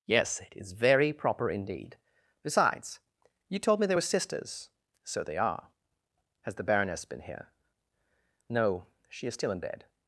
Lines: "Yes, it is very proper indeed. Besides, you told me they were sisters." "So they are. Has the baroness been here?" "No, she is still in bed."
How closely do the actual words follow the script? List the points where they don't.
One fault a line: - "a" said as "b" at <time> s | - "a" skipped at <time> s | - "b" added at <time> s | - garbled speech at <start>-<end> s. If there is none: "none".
none